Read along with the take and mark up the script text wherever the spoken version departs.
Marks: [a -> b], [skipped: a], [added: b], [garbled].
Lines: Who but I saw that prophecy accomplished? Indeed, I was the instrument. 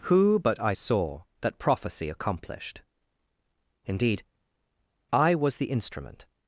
Who but I saw that prophecy accomplished? Indeed, I was the instrument.